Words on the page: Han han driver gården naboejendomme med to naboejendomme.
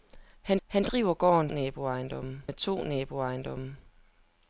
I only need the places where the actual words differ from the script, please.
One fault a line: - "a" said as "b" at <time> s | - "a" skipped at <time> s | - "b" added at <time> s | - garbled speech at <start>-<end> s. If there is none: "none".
none